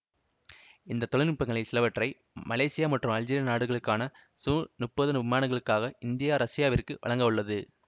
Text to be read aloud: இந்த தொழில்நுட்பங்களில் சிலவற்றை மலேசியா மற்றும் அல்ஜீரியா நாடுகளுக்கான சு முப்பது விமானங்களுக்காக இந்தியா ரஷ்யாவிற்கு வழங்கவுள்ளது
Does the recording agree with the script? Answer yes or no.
yes